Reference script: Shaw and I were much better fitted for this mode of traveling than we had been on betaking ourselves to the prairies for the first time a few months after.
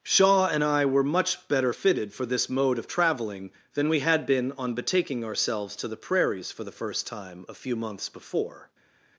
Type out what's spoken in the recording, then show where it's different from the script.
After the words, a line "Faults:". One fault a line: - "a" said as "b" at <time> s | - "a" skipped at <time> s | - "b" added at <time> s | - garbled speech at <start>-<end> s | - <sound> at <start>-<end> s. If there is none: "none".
Shaw and I were much better fitted for this mode of traveling than we had been on betaking ourselves to the prairies for the first time a few months before.
Faults:
- "after" said as "before" at 8.1 s